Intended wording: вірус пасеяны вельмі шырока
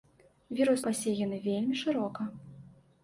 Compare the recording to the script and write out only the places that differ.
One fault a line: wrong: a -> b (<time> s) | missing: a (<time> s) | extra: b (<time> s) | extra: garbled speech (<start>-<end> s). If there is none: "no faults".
no faults